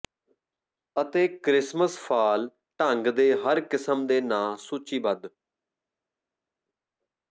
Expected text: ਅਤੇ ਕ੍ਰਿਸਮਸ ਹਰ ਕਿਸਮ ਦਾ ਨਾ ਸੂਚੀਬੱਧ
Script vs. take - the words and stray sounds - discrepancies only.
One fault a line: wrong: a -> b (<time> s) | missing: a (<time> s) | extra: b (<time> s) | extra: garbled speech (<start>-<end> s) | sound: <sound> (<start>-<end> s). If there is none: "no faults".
extra: ਫਾਲ ਢੰਗ ਦੇ (2.0 s)
wrong: ਦਾ -> ਦੇ (4.1 s)